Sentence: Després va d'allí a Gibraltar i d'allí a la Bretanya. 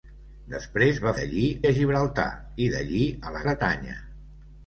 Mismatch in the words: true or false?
false